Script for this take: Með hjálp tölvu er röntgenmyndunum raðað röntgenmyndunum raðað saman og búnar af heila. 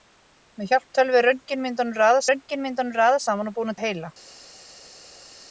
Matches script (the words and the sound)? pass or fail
pass